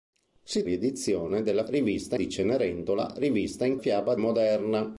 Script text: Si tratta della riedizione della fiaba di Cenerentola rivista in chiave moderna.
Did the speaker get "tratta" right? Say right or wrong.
wrong